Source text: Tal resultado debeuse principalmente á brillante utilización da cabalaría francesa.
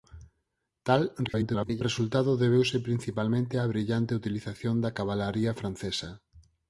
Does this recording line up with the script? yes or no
no